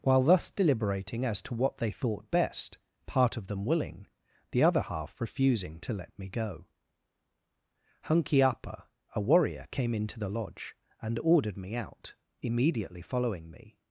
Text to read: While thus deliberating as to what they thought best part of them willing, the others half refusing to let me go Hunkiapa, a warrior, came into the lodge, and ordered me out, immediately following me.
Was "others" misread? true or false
true